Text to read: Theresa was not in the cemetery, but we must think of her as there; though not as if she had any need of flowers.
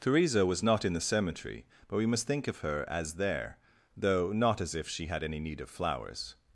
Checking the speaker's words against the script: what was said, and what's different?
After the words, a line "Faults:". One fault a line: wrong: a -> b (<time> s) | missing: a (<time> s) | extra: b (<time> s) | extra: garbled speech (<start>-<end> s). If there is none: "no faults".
Theresa was not in the cemetery, but we must think of her as there; though not as if she had any need of flowers.
Faults:
no faults